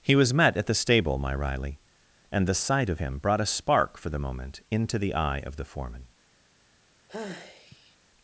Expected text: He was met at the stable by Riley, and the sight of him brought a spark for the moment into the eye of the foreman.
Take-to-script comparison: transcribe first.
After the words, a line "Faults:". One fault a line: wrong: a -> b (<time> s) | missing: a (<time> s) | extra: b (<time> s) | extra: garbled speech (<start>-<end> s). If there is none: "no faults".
He was met at the stable my Riley, and the sight of him brought a spark for the moment into the eye of the foreman.
Faults:
wrong: by -> my (1.2 s)